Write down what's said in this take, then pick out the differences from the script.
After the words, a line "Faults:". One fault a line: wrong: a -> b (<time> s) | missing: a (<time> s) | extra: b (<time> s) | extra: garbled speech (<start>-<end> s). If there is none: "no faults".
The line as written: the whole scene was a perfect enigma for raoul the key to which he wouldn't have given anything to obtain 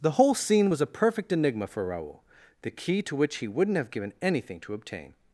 the whole scene was a perfect enigma for raoul the key to which he wouldn't have given anything to obtain
Faults:
no faults